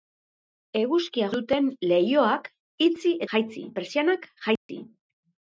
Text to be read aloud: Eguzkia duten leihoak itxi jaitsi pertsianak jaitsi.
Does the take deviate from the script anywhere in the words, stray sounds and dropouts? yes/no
yes